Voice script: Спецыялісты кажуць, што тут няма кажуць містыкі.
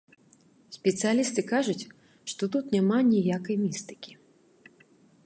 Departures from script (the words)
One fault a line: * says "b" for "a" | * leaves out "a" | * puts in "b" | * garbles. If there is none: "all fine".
* says "ніякай" for "кажуць"